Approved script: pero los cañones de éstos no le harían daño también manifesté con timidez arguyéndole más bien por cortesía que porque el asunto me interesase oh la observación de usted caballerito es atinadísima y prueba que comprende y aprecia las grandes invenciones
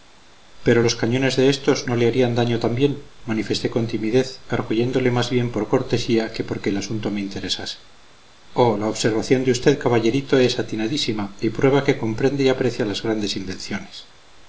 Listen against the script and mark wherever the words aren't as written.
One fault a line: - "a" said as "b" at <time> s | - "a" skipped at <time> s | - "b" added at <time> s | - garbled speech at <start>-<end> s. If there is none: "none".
none